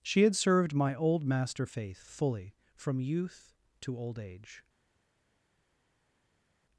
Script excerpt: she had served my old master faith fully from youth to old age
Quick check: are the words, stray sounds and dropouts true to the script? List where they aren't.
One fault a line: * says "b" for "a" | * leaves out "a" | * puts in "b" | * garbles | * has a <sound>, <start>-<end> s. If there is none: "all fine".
all fine